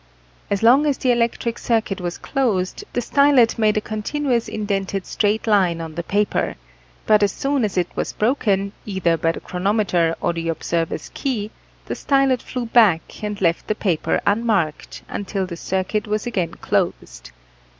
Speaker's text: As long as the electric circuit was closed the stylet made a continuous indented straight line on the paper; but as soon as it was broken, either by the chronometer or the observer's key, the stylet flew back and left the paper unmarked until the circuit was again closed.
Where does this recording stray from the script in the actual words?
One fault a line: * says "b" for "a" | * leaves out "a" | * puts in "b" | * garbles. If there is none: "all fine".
all fine